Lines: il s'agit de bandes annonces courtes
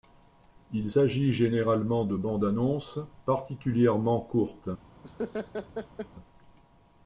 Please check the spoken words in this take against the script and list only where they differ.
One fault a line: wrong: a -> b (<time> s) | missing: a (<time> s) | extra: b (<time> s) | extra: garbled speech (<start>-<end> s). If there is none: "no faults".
extra: généralement (1.3 s)
extra: particulièrement (3.2 s)